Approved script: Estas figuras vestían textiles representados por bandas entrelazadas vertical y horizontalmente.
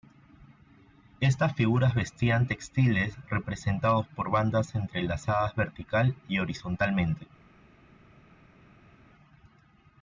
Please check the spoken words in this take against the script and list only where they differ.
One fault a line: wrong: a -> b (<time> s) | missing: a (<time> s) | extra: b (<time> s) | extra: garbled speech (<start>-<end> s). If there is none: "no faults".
no faults